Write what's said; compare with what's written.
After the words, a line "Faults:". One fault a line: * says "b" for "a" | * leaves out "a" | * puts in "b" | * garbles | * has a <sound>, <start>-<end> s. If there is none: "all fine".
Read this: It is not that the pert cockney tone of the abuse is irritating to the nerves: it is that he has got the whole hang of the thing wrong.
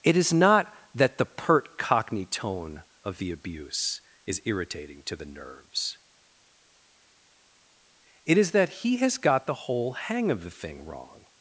It is not that the pert cockney tone of the abuse is irritating to the nerves: it is that he has got the whole hang of the thing wrong.
Faults:
all fine